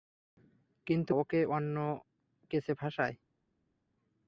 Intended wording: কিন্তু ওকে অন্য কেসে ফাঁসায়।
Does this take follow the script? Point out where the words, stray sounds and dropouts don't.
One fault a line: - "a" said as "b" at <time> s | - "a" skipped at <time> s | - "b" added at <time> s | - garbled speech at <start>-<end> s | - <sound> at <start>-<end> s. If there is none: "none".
none